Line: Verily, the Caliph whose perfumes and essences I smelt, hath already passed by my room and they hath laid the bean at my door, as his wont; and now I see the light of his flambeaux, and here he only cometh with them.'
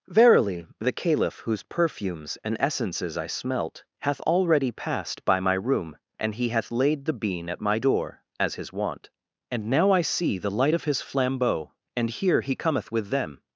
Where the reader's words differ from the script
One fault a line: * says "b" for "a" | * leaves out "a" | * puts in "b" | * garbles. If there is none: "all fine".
* says "he" for "they"
* leaves out "only"